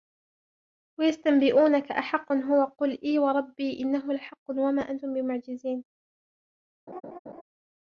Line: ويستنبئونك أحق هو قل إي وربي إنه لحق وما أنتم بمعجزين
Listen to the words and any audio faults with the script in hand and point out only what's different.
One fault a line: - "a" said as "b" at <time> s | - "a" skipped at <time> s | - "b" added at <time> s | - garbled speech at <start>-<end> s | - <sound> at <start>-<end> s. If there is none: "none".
- laugh at 6.9-7.4 s